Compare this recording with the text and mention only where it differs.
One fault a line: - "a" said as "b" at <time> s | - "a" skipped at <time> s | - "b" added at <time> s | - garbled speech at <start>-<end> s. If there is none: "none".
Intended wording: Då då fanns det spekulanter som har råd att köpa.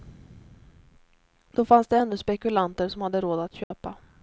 - "då" skipped at 1.6 s
- "ännu" added at 2.0 s
- "har" said as "hade" at 3.0 s